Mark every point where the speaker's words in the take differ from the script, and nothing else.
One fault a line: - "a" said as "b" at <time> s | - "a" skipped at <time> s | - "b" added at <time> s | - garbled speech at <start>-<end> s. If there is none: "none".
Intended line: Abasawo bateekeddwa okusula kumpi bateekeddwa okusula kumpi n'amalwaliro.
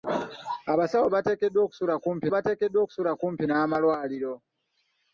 none